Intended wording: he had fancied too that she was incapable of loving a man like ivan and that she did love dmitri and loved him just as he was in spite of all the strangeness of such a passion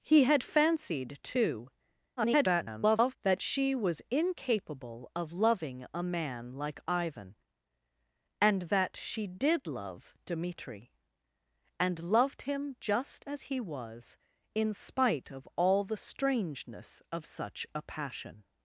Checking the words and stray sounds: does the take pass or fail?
fail